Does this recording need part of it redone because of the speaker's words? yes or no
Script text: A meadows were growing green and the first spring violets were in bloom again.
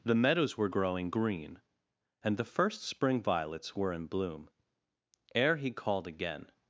yes